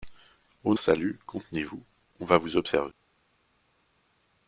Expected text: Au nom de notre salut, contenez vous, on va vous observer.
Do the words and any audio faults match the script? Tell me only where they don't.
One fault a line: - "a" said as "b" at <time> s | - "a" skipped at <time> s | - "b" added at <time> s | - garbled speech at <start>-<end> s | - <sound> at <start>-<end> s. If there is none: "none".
- "nom de notre" skipped at 0.7 s